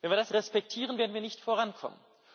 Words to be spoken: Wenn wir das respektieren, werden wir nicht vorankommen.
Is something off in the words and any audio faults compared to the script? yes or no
no